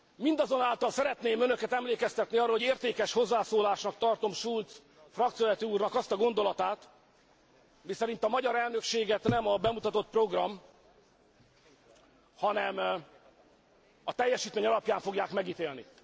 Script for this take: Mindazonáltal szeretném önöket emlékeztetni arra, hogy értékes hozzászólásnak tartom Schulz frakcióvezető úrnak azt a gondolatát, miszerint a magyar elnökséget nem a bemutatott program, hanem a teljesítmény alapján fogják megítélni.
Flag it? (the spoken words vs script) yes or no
no